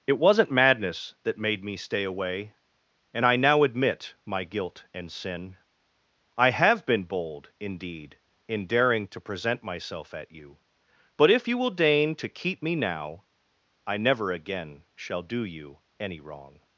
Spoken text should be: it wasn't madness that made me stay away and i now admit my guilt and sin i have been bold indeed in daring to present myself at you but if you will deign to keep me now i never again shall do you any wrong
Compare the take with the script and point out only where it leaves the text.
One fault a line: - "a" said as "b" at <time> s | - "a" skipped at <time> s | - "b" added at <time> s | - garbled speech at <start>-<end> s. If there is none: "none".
none